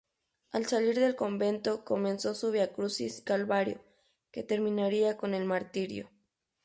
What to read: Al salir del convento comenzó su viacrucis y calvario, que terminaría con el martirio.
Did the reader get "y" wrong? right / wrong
wrong